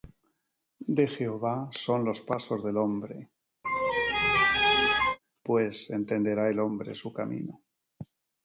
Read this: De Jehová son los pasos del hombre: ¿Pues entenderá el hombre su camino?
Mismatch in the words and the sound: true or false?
true